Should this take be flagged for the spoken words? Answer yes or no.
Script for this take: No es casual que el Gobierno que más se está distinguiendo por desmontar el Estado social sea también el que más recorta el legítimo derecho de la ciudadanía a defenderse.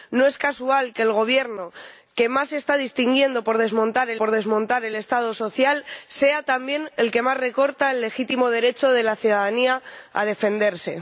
yes